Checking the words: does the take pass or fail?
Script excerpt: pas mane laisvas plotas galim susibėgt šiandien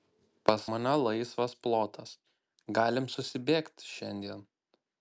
pass